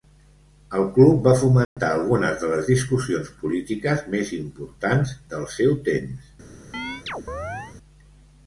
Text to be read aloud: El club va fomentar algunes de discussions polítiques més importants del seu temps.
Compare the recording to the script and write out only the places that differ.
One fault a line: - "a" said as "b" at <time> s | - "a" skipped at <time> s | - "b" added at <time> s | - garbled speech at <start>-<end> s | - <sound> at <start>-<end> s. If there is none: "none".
- dropout at 1.6-1.8 s
- "les" added at 2.5 s
- chirp at 6.7-7.8 s